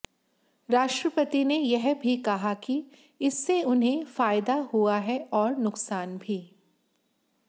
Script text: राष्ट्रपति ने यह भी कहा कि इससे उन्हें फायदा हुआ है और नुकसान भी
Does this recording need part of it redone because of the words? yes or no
no